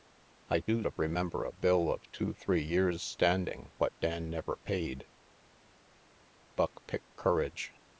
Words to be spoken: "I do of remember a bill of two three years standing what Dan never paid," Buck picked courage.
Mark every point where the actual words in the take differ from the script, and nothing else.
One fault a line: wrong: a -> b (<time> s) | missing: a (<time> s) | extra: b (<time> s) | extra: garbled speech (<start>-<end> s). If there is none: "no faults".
no faults